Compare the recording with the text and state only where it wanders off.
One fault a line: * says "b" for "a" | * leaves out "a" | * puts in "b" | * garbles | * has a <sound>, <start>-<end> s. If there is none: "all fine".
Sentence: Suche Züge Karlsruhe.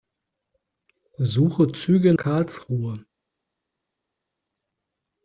all fine